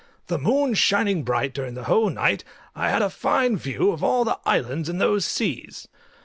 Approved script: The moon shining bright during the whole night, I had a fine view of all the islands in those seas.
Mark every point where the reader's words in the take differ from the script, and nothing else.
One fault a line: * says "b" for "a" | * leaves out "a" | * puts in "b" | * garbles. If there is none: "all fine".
all fine